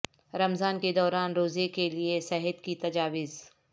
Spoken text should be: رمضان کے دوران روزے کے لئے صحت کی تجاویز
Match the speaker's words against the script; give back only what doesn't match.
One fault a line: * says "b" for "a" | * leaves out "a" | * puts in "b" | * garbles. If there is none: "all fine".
all fine